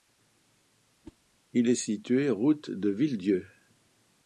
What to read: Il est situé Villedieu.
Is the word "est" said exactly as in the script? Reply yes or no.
yes